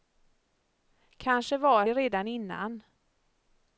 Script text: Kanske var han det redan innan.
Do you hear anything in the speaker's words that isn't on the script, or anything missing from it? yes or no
yes